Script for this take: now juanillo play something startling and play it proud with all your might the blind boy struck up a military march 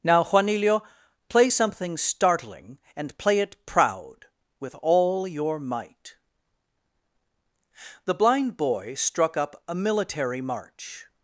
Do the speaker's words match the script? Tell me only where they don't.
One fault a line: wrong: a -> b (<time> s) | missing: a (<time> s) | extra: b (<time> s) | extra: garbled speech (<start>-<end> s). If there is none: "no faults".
no faults